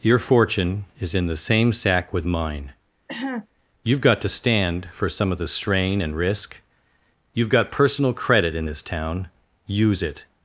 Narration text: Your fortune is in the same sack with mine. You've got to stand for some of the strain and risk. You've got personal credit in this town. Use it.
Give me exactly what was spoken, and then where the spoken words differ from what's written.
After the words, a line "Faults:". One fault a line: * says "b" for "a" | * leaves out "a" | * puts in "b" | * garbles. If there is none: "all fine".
Your fortune is in the same sack with mine. You've got to stand for some of the strain and risk. You've got personal credit in this town. Use it.
Faults:
all fine